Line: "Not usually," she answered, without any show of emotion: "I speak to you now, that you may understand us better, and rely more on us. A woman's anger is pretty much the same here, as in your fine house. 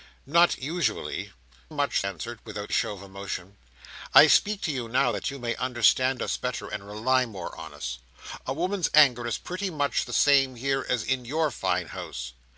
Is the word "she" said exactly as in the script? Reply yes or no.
no